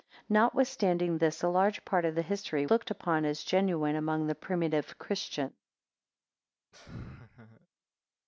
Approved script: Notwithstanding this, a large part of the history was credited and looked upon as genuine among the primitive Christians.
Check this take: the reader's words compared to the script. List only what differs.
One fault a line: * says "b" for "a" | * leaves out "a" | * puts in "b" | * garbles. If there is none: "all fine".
* leaves out "was credited and"